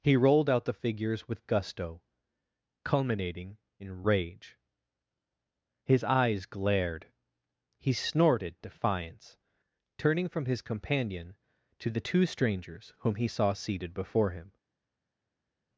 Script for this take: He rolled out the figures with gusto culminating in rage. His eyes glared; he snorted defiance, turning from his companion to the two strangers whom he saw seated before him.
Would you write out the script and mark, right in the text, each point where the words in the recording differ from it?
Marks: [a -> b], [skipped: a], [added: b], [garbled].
He rolled out the figures with gusto culminating in rage. His eyes glared; he snorted defiance, turning from his companion to the two strangers whom he saw seated before him.